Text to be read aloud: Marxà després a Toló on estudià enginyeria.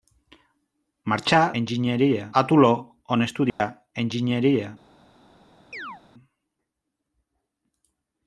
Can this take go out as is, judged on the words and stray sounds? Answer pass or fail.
fail